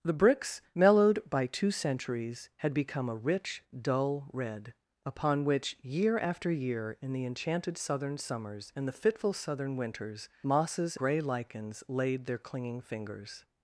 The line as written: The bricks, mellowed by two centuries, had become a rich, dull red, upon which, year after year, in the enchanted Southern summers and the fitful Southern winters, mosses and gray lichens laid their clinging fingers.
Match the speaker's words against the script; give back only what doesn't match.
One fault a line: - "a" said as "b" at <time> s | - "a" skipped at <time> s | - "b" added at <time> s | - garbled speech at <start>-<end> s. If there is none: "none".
- "and" skipped at 11.0 s